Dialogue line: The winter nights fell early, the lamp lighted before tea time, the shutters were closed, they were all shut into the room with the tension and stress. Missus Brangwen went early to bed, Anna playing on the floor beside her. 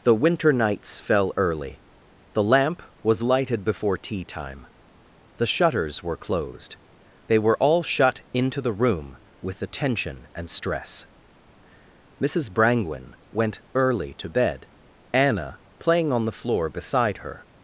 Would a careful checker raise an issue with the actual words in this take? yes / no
yes